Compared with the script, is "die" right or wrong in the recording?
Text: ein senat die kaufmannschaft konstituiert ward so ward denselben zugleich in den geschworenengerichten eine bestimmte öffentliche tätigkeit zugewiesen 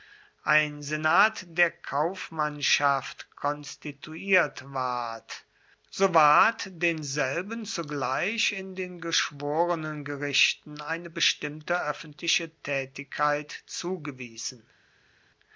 wrong